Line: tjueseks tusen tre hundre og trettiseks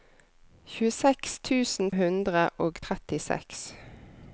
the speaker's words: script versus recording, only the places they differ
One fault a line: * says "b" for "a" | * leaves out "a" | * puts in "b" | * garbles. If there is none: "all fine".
* leaves out "tre"